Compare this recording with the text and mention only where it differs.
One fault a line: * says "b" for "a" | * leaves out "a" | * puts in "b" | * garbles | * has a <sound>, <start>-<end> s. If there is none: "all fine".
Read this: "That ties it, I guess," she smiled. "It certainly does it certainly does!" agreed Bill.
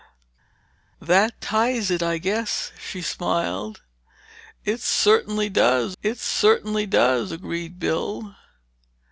all fine